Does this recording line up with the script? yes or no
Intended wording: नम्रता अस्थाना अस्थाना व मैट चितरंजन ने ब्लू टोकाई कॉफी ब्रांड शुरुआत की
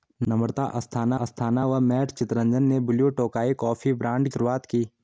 yes